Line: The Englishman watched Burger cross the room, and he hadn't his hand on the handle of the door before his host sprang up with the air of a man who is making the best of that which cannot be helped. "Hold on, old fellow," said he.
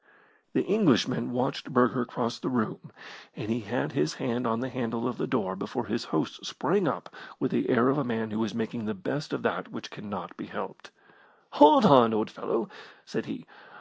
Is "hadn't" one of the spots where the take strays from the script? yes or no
yes